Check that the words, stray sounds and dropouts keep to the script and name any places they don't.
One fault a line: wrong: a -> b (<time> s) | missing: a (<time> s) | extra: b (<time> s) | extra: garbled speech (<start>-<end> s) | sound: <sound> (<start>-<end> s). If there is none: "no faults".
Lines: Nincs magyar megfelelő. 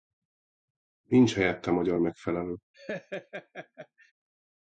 extra: helyette (1.3 s)
sound: laugh (2.7-4.1 s)